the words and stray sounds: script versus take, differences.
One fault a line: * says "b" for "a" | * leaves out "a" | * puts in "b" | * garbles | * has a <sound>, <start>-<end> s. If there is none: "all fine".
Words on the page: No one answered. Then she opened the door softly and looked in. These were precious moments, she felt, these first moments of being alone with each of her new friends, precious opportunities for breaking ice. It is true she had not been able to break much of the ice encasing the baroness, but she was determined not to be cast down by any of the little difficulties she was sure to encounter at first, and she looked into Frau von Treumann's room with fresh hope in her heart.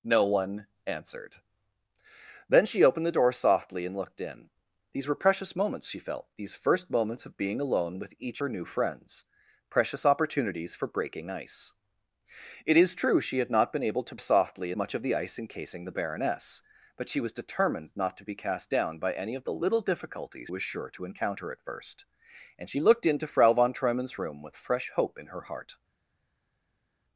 * leaves out "of"
* says "softly" for "break"
* leaves out "she"